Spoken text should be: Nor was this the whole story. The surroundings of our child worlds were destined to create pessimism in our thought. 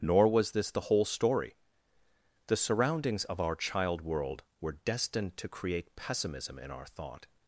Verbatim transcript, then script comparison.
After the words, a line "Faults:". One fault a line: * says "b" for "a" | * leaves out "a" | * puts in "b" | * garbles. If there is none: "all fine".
Nor was this the whole story. The surroundings of our child world were destined to create pessimism in our thought.
Faults:
* says "world" for "worlds"